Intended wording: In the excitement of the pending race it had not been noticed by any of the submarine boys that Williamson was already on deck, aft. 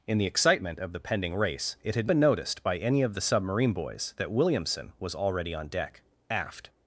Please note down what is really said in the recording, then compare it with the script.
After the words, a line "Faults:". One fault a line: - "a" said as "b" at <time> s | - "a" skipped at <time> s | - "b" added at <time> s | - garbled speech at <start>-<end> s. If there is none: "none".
In the excitement of the pending race it had been noticed by any of the submarine boys that Williamson was already on deck, aft.
Faults:
- "not" skipped at 2.1 s